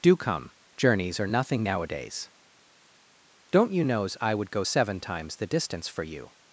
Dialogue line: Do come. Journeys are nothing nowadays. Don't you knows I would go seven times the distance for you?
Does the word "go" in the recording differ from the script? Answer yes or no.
no